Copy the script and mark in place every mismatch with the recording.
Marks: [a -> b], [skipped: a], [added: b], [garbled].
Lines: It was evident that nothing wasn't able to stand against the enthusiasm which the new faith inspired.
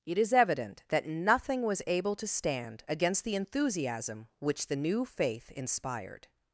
It [was -> is] evident that nothing [wasn't -> was] able to stand against the enthusiasm which the new faith inspired.